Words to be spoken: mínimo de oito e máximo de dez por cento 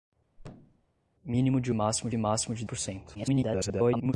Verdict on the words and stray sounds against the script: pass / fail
fail